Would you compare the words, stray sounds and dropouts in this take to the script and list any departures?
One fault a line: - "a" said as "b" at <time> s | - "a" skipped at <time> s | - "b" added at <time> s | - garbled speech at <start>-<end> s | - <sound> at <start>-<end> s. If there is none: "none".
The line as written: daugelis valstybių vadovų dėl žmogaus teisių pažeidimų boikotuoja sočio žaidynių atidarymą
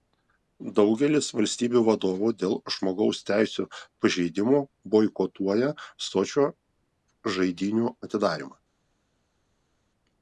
none